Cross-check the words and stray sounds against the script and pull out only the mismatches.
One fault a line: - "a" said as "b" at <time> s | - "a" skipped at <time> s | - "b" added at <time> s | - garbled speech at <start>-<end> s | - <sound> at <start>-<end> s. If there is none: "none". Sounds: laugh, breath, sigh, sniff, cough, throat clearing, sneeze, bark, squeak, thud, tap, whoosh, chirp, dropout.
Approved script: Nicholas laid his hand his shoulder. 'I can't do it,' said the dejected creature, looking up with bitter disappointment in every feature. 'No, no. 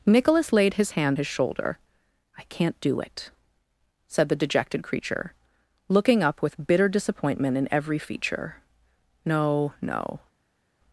none